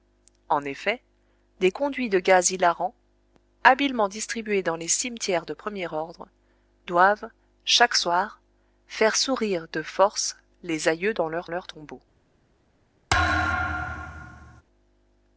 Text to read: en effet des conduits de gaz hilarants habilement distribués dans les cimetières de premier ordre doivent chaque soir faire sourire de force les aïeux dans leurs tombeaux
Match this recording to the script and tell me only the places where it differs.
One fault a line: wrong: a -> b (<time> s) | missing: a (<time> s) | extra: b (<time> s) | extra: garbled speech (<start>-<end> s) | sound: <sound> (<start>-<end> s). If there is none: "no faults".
extra: leurs (11.5 s)
sound: thud (13.1-14.6 s)